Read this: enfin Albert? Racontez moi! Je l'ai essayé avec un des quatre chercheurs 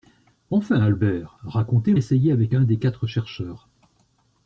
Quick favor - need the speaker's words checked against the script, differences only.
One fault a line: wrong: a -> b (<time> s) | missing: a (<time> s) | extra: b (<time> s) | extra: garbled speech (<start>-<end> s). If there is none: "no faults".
missing: moi Je l'ai (1.9 s)